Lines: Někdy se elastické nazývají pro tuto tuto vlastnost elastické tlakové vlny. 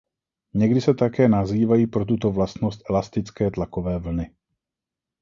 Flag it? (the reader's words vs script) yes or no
yes